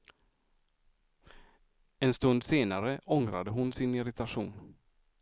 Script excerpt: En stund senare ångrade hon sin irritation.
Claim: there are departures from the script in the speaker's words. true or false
false